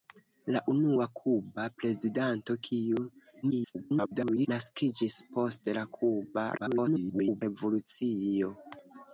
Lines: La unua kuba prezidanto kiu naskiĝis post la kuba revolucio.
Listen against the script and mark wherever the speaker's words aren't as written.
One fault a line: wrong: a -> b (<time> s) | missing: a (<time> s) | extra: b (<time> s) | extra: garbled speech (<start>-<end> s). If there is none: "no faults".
extra: garbled speech (3.4-4.5 s)
extra: garbled speech (6.6-7.4 s)